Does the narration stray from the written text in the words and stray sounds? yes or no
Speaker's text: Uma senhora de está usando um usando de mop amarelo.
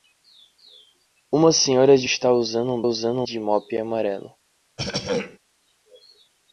yes